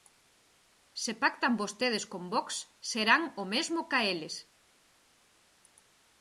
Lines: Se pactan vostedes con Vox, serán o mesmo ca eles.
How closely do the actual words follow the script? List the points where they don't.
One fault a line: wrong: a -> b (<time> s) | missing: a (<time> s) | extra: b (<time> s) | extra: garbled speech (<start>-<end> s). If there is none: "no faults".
no faults